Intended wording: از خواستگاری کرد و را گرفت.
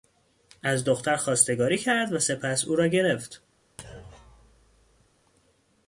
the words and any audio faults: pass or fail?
fail